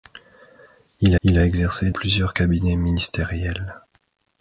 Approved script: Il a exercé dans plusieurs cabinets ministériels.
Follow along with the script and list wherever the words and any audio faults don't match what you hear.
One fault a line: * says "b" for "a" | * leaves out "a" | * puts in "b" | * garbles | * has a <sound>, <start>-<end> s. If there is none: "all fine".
* puts in "il"
* leaves out "dans"